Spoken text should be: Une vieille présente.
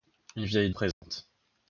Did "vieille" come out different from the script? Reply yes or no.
no